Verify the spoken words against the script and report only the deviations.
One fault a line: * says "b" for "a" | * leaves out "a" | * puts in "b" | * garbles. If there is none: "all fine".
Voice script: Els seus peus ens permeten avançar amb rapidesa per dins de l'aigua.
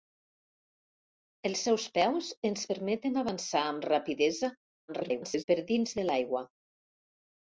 * garbles